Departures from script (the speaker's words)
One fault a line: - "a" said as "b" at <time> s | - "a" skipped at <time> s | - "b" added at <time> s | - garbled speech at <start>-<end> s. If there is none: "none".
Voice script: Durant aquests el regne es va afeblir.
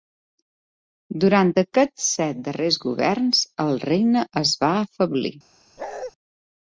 - "set darrers governs" added at 2.1 s